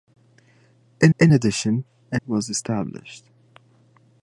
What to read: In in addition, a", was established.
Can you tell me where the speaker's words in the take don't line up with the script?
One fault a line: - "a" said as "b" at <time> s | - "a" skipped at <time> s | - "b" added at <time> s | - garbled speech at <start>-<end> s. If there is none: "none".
none